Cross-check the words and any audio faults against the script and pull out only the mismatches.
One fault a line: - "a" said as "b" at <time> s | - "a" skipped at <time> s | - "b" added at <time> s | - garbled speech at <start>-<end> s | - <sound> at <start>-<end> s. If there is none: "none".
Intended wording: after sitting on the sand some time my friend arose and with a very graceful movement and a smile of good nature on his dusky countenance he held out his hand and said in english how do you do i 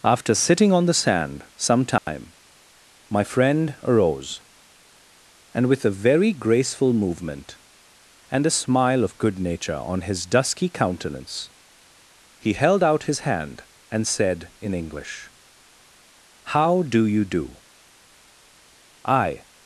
- dropout at 2.0-2.1 s